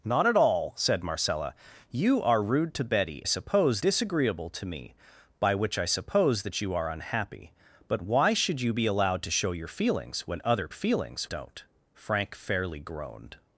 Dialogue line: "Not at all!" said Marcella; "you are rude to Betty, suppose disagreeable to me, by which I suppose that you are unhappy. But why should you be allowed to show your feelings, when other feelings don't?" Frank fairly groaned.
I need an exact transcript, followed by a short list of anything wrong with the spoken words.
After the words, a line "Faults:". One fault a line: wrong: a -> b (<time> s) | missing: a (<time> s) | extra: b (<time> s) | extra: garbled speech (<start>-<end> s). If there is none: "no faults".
"Not at all!" said Marcella; "you are rude to Betty, suppose disagreeable to me, by which I suppose that you are unhappy. But why should you be allowed to show your feelings, when other feelings don't?" Frank fairly groaned.
Faults:
no faults